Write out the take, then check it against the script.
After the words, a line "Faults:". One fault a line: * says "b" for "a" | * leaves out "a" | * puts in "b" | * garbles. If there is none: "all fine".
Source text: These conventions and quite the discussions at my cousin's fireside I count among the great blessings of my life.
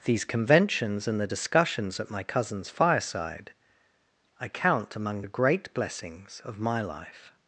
These conventions and the discussions at my cousin's fireside I count among the great blessings of my life.
Faults:
* leaves out "quite"